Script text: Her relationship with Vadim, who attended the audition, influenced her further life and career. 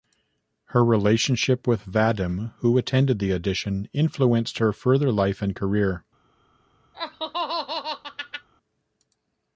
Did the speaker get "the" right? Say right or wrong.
right